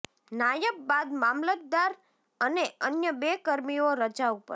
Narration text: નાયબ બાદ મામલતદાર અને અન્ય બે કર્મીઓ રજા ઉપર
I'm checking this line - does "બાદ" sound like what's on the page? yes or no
yes